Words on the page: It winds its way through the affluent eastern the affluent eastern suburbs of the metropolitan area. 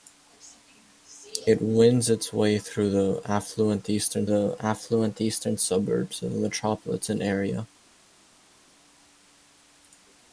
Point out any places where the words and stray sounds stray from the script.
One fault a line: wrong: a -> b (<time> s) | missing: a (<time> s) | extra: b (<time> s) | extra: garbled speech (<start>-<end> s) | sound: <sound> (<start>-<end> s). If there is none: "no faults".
no faults